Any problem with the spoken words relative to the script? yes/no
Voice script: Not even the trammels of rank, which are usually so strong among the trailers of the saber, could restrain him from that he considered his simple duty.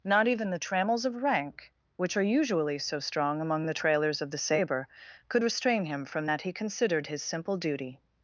no